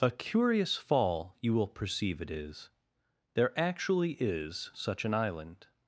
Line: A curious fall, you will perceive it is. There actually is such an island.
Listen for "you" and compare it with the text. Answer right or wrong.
right